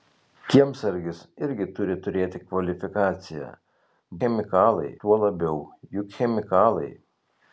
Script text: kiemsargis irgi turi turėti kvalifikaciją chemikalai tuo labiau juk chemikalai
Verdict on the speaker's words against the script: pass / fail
pass